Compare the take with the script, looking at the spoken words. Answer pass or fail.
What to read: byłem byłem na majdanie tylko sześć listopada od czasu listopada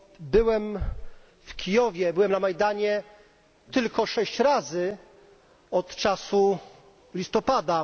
fail